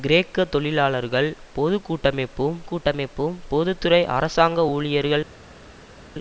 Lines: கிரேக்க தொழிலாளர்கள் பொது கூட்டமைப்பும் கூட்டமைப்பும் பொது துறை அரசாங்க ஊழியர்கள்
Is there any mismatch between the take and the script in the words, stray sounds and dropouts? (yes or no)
no